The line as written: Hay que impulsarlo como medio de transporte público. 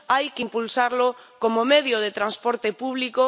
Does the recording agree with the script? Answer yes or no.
yes